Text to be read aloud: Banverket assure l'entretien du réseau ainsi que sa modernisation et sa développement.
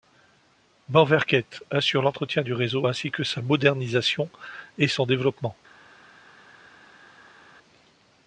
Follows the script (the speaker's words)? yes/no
no